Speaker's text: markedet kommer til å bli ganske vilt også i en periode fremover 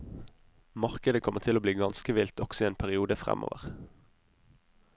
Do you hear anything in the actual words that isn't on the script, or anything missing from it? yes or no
no